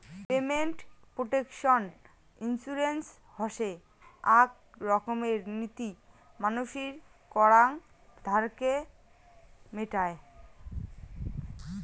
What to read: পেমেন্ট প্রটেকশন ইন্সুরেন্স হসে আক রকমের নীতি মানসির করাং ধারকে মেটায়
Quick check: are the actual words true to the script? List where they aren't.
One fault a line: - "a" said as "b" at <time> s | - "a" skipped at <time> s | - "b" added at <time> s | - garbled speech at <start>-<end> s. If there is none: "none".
none